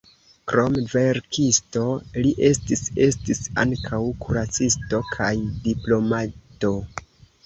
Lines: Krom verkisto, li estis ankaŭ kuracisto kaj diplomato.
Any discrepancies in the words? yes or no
yes